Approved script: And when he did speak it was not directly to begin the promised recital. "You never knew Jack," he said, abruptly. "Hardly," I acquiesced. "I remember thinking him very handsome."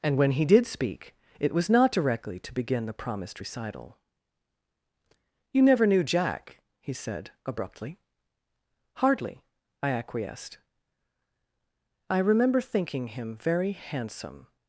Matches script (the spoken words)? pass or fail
pass